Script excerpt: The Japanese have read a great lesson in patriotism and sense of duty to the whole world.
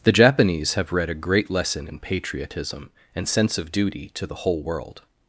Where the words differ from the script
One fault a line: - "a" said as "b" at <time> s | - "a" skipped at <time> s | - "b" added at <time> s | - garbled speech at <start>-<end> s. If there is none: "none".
none